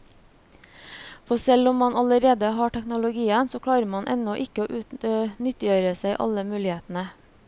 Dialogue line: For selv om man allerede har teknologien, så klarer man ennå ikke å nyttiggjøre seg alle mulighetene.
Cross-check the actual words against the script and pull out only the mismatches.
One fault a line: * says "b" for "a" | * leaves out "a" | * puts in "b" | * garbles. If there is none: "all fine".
all fine